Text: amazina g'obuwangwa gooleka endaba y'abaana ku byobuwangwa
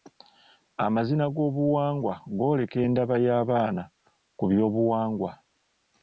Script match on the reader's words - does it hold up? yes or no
yes